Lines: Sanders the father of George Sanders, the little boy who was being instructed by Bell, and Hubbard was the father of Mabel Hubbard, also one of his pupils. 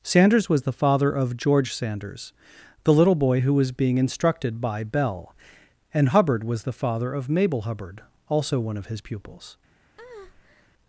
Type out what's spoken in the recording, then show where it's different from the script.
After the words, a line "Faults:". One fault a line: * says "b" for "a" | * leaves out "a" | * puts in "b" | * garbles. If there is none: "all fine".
Sanders was the father of George Sanders, the little boy who was being instructed by Bell, and Hubbard was the father of Mabel Hubbard, also one of his pupils.
Faults:
* puts in "was"